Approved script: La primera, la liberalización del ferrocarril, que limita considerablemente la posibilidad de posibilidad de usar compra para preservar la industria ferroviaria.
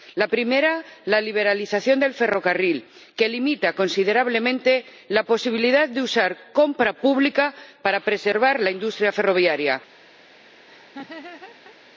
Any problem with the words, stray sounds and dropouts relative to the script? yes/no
yes